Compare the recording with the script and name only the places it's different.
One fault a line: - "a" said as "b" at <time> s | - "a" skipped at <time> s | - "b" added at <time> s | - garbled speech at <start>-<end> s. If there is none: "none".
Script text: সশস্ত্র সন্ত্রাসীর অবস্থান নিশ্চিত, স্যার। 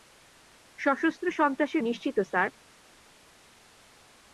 - "অবস্থান" skipped at 1.8 s